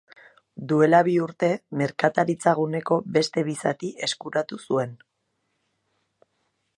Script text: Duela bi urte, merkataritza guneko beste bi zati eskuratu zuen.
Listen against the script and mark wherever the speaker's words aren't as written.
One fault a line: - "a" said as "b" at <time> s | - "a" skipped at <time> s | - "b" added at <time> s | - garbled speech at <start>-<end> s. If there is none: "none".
none